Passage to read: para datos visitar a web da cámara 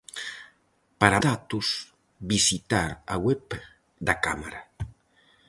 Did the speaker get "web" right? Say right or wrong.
right